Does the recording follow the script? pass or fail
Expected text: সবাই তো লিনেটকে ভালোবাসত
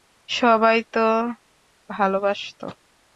fail